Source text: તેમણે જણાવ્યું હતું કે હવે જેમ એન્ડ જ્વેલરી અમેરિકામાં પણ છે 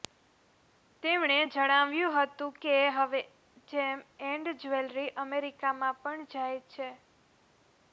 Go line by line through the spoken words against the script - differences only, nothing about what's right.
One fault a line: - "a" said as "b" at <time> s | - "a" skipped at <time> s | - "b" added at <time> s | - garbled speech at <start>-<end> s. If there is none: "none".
- "જાય" added at 6.3 s